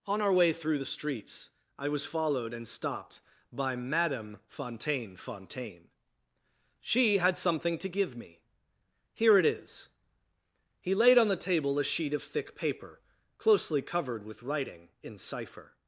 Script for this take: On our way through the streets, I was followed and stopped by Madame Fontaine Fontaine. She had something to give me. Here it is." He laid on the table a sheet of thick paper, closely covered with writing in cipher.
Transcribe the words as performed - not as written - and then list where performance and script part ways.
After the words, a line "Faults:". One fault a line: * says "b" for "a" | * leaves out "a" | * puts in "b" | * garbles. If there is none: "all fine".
On our way through the streets, I was followed and stopped by Madame Fontaine Fontaine. She had something to give me. Here it is." He laid on the table a sheet of thick paper, closely covered with writing in cipher.
Faults:
all fine